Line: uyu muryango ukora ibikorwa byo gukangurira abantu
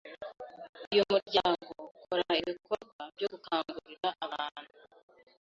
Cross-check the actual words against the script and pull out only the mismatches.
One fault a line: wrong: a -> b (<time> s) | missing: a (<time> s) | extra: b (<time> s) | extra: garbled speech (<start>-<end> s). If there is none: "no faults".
no faults